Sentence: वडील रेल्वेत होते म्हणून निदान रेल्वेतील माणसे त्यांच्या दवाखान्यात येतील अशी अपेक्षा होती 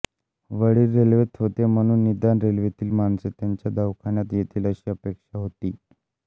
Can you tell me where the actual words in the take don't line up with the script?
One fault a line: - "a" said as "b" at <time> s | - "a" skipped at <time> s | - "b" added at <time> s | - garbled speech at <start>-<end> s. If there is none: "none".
none